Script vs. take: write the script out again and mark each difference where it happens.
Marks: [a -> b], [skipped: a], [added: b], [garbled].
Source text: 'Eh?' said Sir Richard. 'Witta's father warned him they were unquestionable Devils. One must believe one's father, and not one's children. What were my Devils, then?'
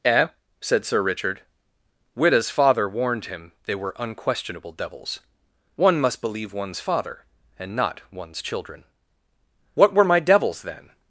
'Eh?' said Sir Richard. 'Witta's father warned him they were unquestionable Devils. One must believe one's father, and not one's children. What were my Devils, then?'